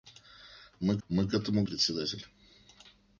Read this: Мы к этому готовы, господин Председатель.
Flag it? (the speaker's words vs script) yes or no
yes